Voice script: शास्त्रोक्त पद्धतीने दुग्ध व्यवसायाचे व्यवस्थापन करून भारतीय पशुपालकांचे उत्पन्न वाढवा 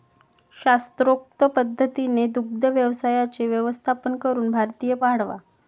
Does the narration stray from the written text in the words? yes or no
yes